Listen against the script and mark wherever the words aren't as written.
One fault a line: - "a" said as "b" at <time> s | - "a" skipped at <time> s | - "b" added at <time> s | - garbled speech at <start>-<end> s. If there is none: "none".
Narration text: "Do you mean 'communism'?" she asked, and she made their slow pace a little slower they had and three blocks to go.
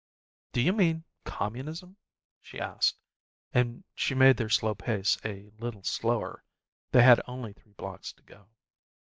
- "and" said as "only" at 7.3 s